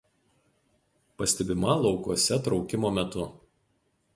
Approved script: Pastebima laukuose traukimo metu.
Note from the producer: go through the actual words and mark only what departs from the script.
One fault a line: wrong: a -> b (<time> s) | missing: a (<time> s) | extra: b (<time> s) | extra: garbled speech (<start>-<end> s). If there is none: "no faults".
no faults